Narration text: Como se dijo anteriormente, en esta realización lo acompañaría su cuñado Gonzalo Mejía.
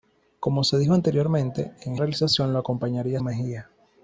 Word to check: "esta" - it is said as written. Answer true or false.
false